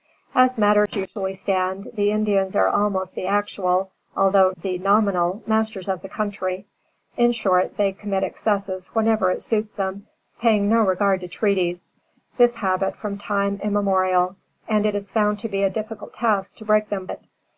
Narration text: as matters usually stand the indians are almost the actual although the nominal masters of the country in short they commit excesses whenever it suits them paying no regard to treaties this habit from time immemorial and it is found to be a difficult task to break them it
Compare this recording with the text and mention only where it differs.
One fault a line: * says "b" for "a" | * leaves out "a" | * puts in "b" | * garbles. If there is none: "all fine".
all fine